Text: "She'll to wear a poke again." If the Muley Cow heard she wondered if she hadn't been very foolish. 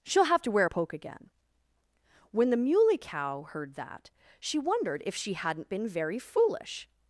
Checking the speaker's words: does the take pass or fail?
fail